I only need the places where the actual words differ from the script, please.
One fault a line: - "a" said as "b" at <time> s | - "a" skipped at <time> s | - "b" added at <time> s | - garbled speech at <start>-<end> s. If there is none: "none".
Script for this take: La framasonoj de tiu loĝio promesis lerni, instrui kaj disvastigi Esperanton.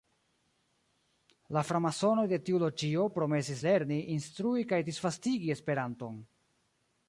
none